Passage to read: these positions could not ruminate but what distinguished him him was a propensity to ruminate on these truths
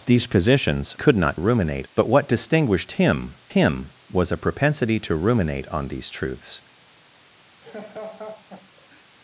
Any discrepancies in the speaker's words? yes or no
no